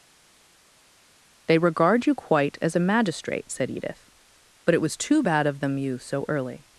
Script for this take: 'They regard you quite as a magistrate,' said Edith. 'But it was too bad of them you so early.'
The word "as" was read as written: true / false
true